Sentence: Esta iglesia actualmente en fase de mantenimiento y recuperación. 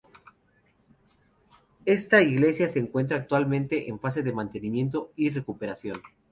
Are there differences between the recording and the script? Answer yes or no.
yes